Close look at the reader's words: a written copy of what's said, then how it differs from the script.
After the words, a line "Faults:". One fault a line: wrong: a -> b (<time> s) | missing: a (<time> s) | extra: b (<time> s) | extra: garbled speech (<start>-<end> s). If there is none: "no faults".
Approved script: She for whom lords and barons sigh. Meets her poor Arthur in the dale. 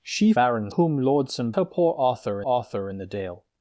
She barons whom lords and her poor Arthur Arthur in the dale.
Faults:
wrong: for -> barons (0.3 s)
missing: barons sigh Meets (1.5 s)
extra: Arthur (2.4 s)